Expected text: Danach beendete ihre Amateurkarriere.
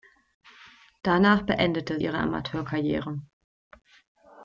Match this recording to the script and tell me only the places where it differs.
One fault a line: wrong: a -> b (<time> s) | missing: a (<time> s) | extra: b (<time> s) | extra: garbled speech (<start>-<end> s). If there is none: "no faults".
no faults